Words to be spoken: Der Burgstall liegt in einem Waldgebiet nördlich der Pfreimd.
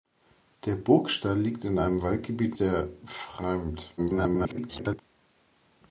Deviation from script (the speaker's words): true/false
true